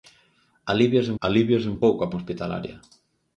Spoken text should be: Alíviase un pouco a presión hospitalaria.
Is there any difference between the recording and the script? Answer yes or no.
yes